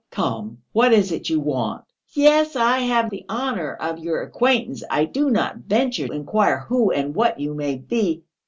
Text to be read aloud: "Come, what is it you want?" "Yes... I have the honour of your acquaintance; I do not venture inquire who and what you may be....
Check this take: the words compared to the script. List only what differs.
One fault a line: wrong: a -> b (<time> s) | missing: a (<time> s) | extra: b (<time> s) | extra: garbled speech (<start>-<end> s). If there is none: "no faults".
no faults